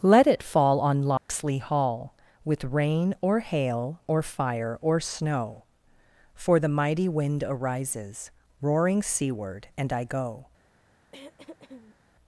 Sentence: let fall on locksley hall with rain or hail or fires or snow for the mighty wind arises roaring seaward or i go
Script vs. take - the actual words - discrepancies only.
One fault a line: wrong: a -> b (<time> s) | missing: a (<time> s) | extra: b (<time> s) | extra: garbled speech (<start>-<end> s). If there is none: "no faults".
extra: it (0.2 s)
wrong: fires -> fire (4.2 s)
wrong: or -> and (9.8 s)